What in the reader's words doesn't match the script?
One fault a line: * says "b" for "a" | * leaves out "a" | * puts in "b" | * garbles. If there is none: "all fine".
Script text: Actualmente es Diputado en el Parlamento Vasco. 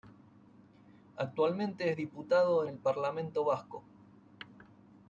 all fine